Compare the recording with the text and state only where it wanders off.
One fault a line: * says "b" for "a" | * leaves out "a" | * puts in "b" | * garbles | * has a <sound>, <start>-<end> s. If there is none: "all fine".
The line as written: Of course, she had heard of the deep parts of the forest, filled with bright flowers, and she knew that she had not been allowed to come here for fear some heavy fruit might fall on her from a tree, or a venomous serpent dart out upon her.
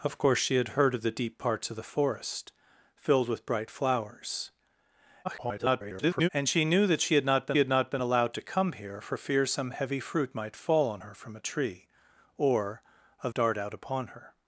* garbles
* puts in "had not been"
* leaves out "venomous serpent"